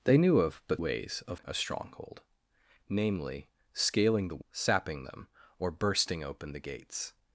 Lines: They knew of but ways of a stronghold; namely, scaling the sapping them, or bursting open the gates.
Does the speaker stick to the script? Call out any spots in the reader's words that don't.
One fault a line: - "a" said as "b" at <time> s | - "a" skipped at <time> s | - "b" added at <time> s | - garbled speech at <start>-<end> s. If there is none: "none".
none